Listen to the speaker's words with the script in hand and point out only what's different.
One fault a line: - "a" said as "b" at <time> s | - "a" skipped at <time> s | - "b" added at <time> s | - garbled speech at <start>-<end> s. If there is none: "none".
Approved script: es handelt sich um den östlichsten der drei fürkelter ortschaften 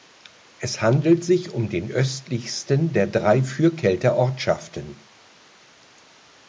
none